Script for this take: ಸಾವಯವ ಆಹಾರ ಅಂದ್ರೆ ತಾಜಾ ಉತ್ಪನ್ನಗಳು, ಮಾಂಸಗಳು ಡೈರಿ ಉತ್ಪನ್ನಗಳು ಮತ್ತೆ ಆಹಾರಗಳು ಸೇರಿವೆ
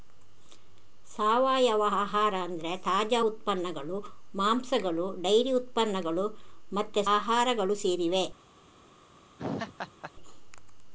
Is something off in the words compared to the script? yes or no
no